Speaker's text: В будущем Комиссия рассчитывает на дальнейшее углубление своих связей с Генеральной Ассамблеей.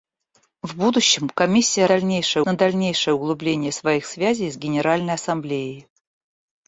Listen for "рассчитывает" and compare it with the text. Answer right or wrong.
wrong